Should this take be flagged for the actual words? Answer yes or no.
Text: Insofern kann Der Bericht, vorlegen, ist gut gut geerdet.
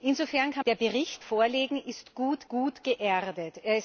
no